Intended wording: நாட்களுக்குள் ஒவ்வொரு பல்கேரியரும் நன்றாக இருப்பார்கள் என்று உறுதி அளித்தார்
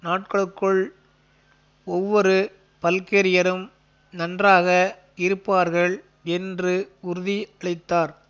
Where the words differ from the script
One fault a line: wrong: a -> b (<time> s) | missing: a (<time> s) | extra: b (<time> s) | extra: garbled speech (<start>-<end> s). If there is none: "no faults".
no faults